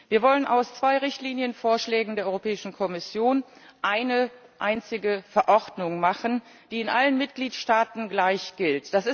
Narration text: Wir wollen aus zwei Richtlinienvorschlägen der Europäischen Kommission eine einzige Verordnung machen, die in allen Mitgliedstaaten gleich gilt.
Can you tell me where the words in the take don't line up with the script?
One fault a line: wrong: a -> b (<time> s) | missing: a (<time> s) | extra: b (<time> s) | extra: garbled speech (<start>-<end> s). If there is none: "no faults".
no faults